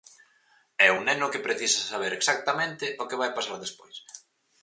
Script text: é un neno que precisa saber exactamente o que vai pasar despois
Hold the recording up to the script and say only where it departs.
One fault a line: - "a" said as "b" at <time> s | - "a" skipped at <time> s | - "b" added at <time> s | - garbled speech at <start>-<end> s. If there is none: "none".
none